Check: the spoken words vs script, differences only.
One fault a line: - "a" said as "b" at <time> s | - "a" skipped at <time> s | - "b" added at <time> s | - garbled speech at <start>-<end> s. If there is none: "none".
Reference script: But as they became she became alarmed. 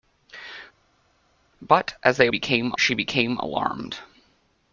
none